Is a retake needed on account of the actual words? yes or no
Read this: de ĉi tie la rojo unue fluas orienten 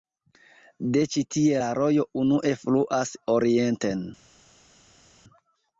no